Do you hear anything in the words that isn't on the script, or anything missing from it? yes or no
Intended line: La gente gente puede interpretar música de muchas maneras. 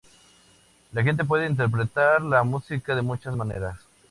yes